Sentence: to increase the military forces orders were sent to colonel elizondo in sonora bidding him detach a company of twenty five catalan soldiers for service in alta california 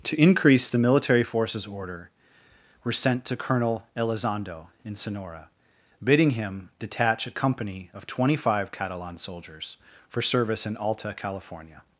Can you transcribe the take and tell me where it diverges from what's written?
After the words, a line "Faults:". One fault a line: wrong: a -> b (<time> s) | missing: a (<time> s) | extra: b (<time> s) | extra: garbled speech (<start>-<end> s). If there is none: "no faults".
to increase the military forces order were sent to colonel elizondo in sonora bidding him detach a company of twenty five catalan soldiers for service in alta california
Faults:
wrong: orders -> order (1.7 s)